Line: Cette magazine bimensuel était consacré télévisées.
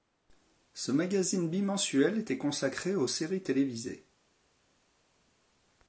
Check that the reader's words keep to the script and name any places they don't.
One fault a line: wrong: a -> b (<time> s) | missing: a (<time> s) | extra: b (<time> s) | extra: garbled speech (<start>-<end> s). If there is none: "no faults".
wrong: Cette -> Ce (0.7 s)
extra: aux séries (3.0 s)